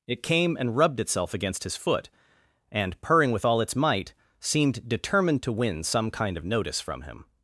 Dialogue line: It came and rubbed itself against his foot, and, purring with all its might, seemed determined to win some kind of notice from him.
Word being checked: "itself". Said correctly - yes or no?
yes